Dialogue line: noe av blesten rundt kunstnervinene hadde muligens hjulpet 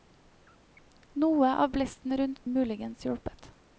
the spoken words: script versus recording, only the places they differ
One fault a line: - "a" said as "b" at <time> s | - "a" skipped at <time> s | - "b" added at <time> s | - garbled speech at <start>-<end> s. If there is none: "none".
- "kunstnervinene hadde" skipped at 2.5 s